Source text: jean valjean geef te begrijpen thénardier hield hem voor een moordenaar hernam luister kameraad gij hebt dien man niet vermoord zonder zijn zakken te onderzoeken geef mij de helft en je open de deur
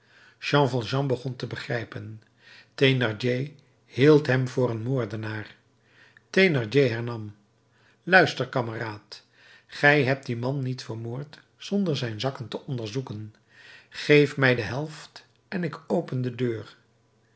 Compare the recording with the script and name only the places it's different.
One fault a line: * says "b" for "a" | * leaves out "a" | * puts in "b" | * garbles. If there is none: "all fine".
* says "begon" for "geef"
* puts in "thénardier"
* says "ik" for "je"